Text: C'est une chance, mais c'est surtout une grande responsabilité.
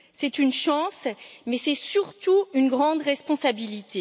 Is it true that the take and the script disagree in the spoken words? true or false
false